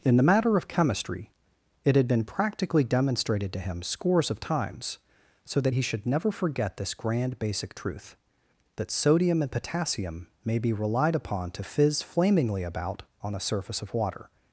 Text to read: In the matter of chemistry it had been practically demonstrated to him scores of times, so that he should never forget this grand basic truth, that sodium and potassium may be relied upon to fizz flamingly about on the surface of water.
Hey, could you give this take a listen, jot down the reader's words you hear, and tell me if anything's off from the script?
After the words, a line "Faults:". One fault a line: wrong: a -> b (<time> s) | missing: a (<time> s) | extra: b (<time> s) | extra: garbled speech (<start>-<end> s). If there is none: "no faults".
In the matter of chemistry it had been practically demonstrated to him scores of times, so that he should never forget this grand basic truth, that sodium and potassium may be relied upon to fizz flamingly about on the surface of water.
Faults:
no faults